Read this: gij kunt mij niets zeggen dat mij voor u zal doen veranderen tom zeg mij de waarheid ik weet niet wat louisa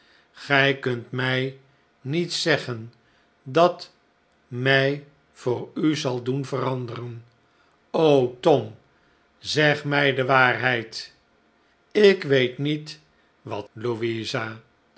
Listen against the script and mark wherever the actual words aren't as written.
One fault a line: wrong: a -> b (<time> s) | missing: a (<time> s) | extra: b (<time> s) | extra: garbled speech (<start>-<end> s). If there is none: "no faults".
no faults